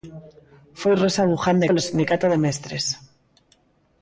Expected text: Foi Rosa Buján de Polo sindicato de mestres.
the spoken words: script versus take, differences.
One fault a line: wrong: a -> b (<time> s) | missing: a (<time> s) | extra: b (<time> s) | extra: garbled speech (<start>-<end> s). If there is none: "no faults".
no faults